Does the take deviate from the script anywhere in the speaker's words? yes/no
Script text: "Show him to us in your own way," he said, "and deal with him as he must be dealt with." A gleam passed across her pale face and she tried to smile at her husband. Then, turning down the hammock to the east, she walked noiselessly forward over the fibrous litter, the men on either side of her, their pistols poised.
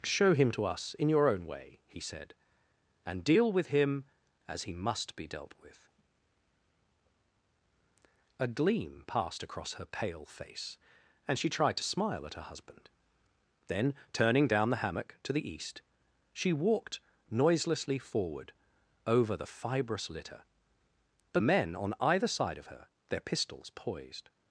no